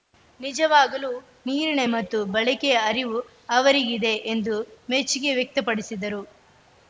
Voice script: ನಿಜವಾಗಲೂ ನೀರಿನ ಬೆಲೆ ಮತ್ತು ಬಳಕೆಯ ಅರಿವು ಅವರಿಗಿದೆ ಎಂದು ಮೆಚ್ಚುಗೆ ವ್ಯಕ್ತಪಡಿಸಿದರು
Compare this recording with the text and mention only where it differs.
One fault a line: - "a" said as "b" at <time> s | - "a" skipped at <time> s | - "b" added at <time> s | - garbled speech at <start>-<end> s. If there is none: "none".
- "ಬೆಲೆ" skipped at 1.8 s